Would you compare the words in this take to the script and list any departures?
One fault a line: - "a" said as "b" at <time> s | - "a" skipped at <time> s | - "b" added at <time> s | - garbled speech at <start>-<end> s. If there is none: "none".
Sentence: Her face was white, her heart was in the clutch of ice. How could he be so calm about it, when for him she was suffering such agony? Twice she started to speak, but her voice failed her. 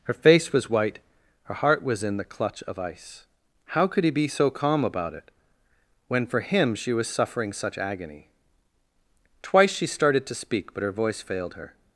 none